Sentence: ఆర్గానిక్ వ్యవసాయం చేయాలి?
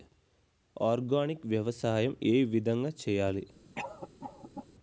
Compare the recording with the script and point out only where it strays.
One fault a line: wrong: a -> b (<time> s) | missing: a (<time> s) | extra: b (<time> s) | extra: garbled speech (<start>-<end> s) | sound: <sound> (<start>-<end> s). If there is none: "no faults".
extra: ఏ విధంగా (2.2 s)
sound: cough (3.7-4.7 s)